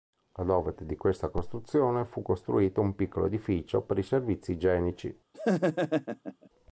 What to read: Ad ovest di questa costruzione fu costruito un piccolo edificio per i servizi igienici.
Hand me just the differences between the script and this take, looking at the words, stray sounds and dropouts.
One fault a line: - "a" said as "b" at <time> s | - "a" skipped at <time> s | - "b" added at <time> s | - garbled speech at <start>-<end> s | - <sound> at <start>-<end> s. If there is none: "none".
- laugh at 5.3-6.5 s